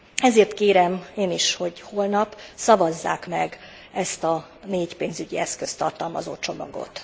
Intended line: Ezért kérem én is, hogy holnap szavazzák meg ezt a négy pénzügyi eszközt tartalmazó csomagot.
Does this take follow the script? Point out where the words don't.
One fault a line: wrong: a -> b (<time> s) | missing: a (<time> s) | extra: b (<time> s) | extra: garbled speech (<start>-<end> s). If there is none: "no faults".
no faults